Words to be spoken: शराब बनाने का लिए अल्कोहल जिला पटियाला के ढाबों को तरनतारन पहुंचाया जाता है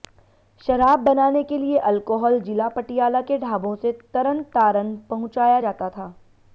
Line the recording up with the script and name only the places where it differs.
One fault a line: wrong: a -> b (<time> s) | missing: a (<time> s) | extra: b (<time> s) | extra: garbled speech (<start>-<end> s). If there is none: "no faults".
wrong: का -> के (1.4 s)
wrong: को -> से (3.8 s)
wrong: है -> था (5.9 s)